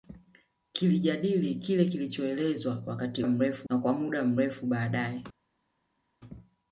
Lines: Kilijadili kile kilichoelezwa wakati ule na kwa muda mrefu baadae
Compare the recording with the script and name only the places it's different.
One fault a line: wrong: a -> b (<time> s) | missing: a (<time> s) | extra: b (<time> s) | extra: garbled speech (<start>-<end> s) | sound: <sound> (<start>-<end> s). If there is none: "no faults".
wrong: ule -> mrefu (3.3 s)